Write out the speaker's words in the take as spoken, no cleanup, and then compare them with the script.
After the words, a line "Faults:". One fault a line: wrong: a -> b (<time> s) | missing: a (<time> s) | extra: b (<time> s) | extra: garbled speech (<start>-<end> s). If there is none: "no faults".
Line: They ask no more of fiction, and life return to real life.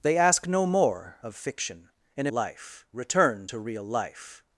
They ask no more of fiction, and life return to real life.
Faults:
no faults